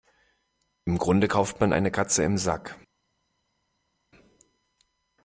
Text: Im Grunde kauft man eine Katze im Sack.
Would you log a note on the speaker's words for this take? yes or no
no